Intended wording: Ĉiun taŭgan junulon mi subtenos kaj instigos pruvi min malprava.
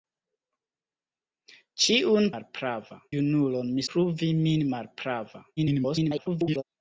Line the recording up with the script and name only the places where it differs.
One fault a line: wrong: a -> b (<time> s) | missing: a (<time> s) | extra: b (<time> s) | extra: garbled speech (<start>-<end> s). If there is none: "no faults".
wrong: taŭgan -> malprava (2.3 s)
missing: subtenos kaj instigos (3.9 s)
extra: garbled speech (5.6-6.6 s)